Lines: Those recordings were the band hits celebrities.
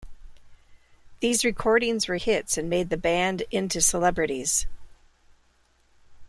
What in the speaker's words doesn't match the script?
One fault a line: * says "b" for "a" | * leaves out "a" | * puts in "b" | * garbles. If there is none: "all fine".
* says "These" for "Those"
* puts in "hits and made"
* says "into" for "hits"